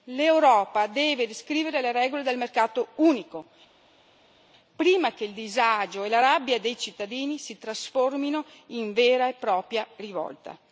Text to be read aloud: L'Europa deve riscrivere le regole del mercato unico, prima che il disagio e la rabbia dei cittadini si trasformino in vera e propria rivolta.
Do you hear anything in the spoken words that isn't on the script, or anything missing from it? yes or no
no